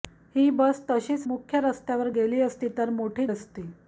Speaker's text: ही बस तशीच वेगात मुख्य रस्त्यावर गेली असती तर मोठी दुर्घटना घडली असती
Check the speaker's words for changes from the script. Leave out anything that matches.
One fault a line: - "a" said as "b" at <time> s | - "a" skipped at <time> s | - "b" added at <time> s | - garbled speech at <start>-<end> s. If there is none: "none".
- "वेगात" skipped at 1.3 s
- "दुर्घटना घडली" skipped at 3.3 s